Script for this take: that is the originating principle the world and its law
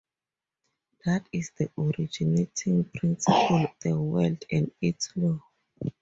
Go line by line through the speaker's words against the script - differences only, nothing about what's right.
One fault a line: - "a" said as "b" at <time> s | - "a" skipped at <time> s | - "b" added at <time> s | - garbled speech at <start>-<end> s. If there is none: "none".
none